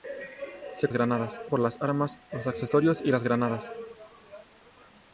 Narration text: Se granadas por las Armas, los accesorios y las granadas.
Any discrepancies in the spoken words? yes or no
no